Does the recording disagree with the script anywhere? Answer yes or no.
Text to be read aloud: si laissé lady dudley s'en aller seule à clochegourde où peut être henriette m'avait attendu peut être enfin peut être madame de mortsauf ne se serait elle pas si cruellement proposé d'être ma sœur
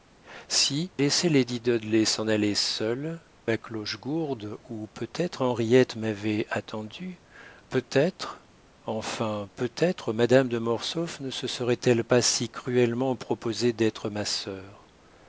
no